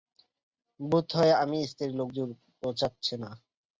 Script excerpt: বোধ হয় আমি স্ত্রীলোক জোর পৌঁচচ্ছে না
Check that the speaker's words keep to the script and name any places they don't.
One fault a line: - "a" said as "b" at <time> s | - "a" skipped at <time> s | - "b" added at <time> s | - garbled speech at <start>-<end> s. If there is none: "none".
none